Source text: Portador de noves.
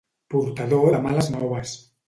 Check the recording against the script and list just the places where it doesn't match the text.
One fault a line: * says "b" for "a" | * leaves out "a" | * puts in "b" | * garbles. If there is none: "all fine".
* puts in "males"